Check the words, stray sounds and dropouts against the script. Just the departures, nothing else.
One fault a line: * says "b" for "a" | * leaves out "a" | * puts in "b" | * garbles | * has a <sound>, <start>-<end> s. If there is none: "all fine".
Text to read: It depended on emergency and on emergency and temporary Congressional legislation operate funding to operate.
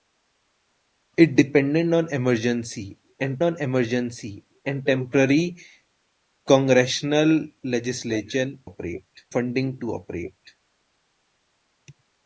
all fine